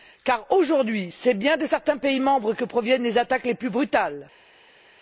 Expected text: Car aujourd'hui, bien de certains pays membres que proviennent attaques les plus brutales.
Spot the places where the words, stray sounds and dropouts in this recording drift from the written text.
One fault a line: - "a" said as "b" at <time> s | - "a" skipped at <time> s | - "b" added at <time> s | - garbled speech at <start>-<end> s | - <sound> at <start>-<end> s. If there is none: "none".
- "c'est" added at 1.1 s
- "les" added at 3.0 s